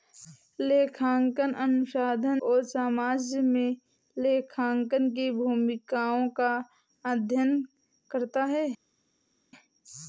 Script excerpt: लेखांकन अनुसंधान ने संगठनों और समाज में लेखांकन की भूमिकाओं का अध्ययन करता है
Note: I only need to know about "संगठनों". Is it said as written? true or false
false